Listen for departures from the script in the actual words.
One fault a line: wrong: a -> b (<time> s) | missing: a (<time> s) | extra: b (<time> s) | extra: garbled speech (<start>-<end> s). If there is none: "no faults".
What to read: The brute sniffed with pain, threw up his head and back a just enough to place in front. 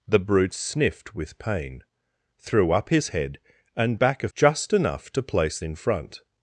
no faults